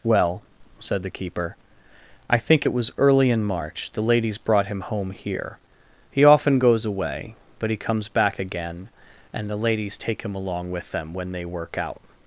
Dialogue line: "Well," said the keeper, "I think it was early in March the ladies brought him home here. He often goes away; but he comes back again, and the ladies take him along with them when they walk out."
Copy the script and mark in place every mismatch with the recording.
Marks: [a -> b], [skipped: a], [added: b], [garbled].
"Well," said the keeper, "I think it was early in March the ladies brought him home here. He often goes away; but he comes back again, and the ladies take him along with them when they [walk -> work] out."